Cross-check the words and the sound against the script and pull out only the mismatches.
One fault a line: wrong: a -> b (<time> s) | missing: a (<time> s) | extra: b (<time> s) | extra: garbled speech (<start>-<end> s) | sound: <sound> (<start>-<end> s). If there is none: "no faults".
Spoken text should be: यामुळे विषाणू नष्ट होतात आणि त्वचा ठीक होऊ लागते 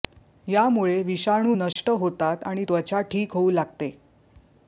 sound: dropout (1.7-1.8 s)